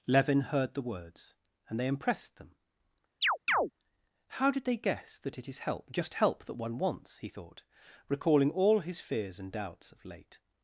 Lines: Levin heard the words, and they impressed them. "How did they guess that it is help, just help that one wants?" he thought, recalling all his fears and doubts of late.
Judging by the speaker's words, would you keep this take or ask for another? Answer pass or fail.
pass